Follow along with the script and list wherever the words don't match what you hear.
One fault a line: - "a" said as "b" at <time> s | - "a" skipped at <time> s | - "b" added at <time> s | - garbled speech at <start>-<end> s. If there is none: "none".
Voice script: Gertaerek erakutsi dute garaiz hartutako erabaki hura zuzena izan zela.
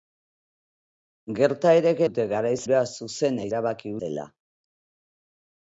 - "erakutsi" skipped at 2.0 s
- "hartutako erabaki" skipped at 2.6 s
- "izan" said as "erabaki" at 3.5 s